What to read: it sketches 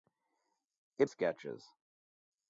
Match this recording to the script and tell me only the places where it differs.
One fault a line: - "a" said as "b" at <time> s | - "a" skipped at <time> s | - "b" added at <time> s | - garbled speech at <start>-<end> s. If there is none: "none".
none